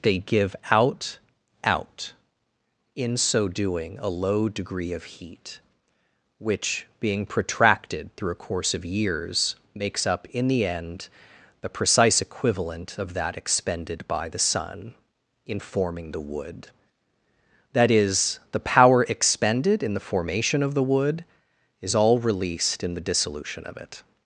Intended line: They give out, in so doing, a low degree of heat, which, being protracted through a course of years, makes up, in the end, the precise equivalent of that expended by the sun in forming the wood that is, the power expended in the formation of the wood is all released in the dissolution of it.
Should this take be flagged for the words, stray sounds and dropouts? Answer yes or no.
yes